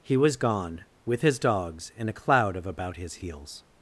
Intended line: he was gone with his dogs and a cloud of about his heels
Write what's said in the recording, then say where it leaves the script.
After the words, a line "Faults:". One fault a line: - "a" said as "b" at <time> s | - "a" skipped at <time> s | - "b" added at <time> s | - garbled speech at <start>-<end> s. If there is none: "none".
he was gone with his dogs and a cloud of about his heels
Faults:
none